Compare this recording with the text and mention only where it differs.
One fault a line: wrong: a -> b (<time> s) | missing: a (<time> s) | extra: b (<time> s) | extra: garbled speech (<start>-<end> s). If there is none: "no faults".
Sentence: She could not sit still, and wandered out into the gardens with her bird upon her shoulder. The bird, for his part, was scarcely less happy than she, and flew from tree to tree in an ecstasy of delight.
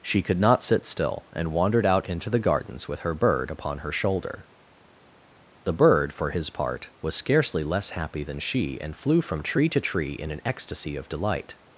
no faults